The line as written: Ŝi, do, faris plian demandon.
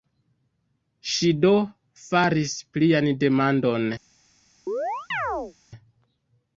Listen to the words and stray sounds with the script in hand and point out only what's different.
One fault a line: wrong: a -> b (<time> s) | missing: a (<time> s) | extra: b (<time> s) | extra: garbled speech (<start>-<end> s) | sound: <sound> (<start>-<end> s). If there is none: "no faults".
sound: chirp (4.7-5.5 s)